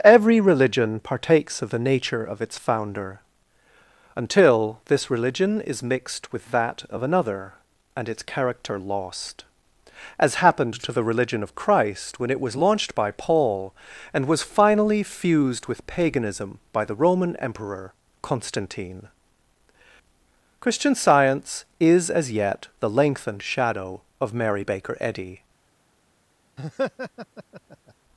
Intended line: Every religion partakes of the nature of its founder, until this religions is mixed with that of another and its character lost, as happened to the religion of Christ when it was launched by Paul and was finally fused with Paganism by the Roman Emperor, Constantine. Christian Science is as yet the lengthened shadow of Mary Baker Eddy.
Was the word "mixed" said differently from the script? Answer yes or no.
no